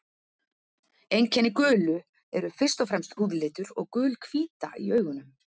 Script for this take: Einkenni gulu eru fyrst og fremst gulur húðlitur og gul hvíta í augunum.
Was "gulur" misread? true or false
true